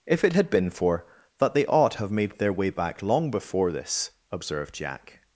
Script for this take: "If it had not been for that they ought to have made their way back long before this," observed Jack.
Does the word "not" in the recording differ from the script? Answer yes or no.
yes